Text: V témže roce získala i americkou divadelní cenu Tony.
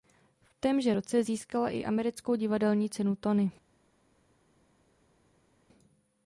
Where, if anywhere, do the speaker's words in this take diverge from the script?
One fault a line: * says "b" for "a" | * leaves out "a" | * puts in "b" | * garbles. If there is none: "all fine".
all fine